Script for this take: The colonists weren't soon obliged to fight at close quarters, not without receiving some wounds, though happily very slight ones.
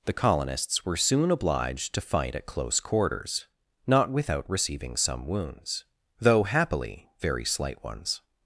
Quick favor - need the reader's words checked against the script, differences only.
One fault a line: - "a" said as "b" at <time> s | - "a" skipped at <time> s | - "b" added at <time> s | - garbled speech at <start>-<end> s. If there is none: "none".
- "weren't" said as "were" at 0.8 s